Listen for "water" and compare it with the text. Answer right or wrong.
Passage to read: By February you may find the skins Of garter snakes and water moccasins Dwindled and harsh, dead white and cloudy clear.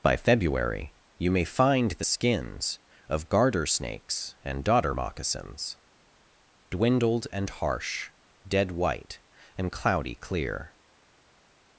wrong